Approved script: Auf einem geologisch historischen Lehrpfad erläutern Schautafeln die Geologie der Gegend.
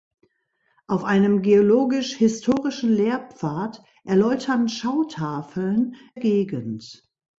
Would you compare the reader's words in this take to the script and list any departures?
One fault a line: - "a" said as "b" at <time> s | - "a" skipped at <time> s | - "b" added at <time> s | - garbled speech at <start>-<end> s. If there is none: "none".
- "die Geologie der" skipped at 5.9 s